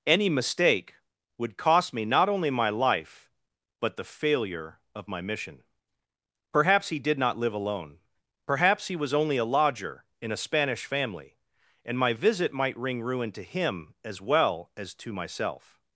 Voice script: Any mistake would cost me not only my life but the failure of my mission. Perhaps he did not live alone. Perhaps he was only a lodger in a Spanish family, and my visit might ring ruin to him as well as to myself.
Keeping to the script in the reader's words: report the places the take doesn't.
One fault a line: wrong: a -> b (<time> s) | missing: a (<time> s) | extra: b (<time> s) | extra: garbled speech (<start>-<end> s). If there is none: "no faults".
no faults